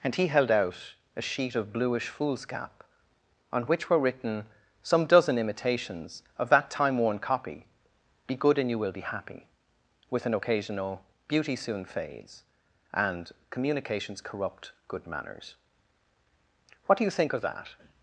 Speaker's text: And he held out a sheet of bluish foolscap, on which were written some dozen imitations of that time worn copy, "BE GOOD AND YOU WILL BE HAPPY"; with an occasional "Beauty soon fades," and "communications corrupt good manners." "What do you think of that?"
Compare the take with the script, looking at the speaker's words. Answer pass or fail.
pass